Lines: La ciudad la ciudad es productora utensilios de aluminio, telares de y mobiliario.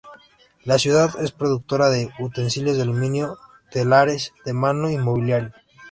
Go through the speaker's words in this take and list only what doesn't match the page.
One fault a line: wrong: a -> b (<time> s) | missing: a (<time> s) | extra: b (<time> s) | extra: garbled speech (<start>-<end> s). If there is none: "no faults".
missing: la ciudad (1.1 s)
extra: de (1.9 s)
extra: mano (4.5 s)